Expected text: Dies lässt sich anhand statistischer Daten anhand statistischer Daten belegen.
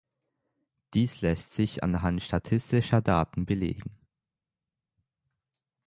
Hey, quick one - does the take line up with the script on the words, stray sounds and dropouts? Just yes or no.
no